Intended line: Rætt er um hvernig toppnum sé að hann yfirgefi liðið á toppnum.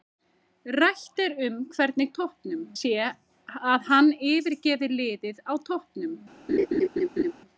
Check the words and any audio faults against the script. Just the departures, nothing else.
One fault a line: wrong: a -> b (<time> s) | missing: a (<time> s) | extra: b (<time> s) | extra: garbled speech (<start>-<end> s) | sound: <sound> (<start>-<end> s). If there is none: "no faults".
sound: laugh (6.5-7.3 s)